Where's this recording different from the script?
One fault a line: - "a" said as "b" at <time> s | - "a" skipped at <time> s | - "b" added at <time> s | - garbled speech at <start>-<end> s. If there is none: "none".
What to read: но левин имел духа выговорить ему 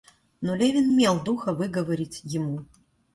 none